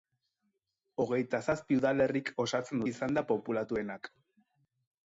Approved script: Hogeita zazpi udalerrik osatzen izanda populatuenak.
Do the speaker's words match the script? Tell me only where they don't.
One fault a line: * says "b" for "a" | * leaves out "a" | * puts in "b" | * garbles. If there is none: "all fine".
all fine